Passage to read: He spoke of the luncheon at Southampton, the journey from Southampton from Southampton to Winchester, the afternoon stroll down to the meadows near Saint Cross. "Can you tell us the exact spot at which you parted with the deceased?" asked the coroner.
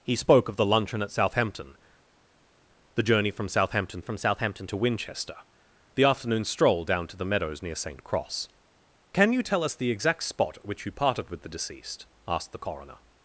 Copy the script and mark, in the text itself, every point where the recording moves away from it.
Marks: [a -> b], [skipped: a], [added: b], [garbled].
He spoke of the luncheon at Southampton, the journey from Southampton from Southampton to Winchester, the afternoon stroll down to the meadows near Saint Cross. "Can you tell us the exact spot at which you parted with the deceased?" asked the coroner.